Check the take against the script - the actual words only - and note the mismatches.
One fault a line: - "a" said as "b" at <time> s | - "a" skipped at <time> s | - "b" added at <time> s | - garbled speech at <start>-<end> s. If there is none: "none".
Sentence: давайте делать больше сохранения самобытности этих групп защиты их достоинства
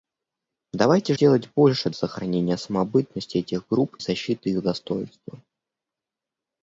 none